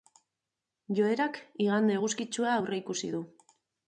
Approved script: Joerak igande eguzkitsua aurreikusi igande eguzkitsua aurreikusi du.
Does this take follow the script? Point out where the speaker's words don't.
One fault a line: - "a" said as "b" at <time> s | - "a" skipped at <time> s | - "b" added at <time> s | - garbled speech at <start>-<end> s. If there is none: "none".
- "igande eguzkitsua aurreikusi" skipped at 3.1 s